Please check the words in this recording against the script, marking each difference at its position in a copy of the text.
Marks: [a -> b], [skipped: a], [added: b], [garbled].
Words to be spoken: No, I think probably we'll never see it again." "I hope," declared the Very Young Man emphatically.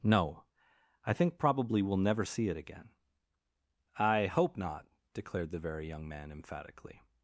No, I think probably we'll never see it again." "I hope," [added: not] declared the Very Young Man emphatically.